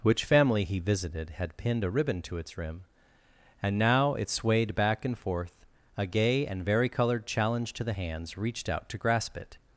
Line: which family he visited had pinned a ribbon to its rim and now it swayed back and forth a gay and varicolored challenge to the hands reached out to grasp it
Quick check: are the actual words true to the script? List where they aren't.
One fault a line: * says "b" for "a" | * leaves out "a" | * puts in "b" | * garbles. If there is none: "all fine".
all fine